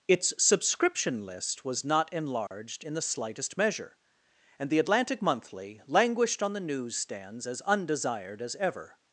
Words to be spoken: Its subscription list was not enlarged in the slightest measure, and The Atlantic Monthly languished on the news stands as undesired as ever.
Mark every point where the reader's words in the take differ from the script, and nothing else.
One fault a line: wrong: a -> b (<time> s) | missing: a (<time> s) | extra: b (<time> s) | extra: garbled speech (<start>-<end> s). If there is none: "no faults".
no faults